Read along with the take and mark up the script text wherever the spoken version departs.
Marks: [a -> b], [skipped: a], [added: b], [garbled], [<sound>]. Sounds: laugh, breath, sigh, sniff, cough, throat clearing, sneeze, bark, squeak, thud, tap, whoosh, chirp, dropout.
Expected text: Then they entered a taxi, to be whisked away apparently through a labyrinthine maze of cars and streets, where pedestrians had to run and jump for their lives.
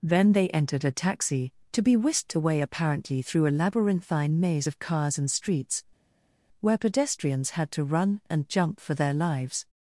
Then they entered a taxi, to be whisked away apparently through a labyrinthine maze of cars and streets, where pedestrians had to run and jump for their lives.